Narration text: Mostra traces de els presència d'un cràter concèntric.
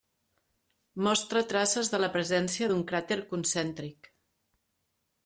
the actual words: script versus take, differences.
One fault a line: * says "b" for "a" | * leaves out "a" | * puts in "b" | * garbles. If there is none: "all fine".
* says "la" for "els"